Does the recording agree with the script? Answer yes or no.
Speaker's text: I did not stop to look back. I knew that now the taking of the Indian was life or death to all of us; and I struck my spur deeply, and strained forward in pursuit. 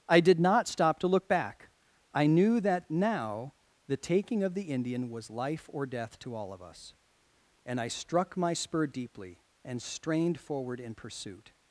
yes